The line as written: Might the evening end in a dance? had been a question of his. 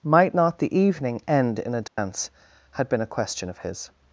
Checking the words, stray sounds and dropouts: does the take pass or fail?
fail